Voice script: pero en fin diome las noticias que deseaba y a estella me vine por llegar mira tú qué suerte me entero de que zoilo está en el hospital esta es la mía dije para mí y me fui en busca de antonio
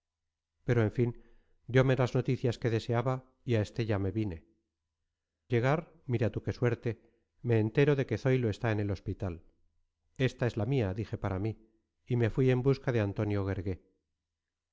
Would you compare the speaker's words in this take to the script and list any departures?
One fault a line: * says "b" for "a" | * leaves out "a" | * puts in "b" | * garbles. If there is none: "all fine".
* leaves out "por"